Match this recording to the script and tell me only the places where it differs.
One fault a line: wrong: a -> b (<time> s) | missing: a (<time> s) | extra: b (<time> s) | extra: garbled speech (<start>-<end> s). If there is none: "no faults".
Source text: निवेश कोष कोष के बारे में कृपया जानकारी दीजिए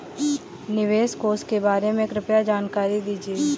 missing: कोष (1.4 s)